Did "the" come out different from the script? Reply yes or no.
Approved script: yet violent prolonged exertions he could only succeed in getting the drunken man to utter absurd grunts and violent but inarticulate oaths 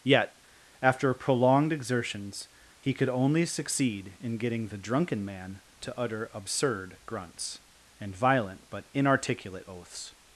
no